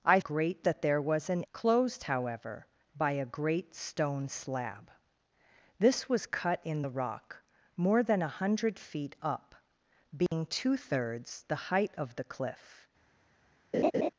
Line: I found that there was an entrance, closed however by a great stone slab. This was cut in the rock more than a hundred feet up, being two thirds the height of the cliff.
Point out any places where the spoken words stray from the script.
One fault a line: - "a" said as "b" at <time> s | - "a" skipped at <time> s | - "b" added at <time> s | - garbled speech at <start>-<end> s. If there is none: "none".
- "found" said as "great" at 0.2 s
- "entrance" skipped at 1.4 s